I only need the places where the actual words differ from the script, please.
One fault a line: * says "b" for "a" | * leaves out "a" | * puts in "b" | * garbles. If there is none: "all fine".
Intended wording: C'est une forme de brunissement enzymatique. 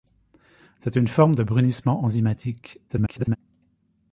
* garbles